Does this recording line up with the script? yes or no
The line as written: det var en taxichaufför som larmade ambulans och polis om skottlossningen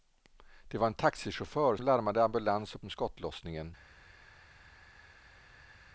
no